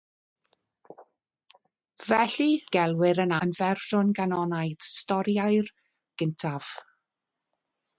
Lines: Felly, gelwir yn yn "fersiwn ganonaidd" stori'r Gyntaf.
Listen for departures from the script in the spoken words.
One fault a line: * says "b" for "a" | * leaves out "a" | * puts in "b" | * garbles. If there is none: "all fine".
all fine